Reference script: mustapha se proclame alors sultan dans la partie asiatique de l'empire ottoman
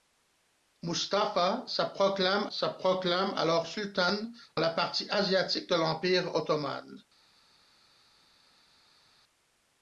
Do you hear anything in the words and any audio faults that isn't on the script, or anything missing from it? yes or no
yes